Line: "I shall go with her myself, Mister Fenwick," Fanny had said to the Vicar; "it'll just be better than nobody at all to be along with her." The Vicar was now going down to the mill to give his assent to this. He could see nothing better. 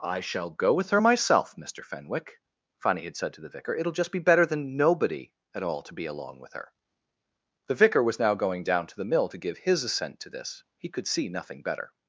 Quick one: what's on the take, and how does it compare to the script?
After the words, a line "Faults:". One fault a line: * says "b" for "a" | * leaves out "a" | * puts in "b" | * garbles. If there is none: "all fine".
"I shall go with her myself, Mister Fenwick," Fanny had said to the Vicar; "it'll just be better than nobody at all to be along with her." The Vicar was now going down to the mill to give his assent to this. He could see nothing better.
Faults:
all fine